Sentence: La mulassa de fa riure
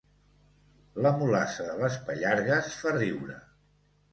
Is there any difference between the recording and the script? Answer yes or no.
yes